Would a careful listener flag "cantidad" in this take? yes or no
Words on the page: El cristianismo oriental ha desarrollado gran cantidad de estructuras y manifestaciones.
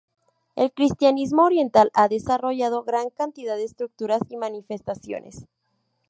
no